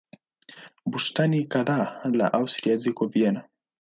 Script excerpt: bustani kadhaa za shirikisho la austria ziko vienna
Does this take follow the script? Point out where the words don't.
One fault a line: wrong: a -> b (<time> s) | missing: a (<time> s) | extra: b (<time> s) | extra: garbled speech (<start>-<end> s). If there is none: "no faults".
missing: za shirikisho (2.1 s)